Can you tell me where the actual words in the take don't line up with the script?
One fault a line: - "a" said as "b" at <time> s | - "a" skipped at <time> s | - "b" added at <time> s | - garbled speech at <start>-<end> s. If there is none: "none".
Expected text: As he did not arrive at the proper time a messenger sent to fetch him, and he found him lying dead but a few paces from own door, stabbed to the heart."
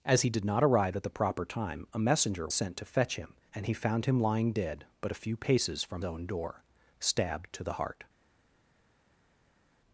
none